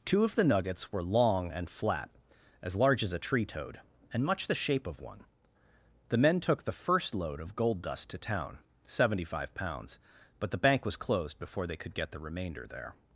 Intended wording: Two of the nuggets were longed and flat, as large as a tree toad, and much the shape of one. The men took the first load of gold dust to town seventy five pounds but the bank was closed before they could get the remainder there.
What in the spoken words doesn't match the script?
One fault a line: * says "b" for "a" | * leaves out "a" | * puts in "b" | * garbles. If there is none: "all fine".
* says "long" for "longed"